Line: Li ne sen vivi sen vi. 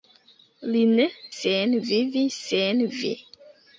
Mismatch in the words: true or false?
false